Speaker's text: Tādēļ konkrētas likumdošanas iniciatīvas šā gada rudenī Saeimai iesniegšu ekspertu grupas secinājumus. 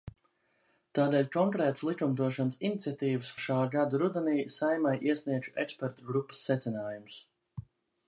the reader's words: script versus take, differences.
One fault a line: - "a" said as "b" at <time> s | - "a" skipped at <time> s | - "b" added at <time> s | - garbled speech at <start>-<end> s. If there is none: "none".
none